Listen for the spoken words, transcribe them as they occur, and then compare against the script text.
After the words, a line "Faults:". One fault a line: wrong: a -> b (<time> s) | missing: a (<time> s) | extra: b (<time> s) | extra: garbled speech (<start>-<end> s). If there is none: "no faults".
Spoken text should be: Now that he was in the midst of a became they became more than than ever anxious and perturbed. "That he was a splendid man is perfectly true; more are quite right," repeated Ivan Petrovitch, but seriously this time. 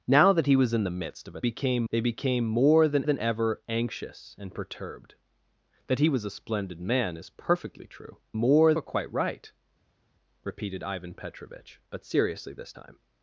Now that he was in the midst of a became they became more than than ever anxious and perturbed. "That he was a splendid man is perfectly true; more are quite right," repeated Ivan Petrovitch, but seriously this time.
Faults:
no faults